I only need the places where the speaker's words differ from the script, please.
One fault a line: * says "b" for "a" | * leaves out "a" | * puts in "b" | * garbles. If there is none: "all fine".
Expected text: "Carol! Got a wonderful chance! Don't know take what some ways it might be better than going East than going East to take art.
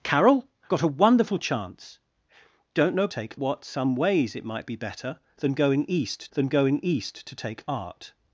all fine